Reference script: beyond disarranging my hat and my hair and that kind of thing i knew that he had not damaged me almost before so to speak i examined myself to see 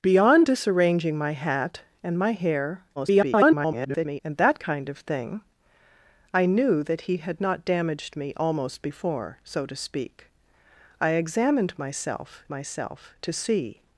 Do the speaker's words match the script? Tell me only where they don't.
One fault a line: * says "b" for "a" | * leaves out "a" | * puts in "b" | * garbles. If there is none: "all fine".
* garbles
* puts in "myself"